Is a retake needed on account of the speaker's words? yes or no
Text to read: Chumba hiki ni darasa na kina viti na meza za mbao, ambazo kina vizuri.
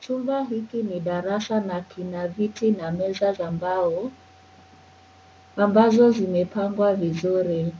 yes